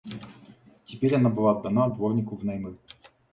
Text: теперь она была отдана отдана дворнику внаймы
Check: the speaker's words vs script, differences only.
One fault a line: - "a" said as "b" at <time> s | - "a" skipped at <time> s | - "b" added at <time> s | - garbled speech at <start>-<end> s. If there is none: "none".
- "отдана" skipped at 1.9 s